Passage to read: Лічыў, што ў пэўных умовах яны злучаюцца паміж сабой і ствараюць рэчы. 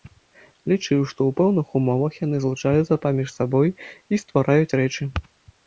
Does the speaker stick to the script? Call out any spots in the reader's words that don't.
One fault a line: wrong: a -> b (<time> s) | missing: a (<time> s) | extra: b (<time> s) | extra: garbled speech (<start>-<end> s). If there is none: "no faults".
no faults